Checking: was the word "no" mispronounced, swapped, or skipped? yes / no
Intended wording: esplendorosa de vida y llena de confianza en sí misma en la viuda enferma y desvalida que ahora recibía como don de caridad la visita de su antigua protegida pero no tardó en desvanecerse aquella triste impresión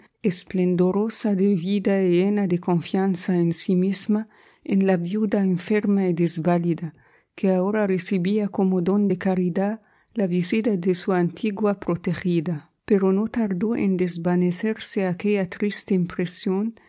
no